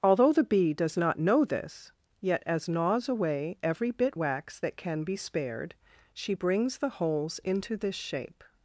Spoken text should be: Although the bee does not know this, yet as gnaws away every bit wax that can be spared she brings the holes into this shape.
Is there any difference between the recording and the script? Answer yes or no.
no